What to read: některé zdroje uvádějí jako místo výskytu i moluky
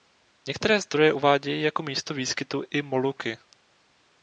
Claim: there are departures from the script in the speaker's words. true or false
false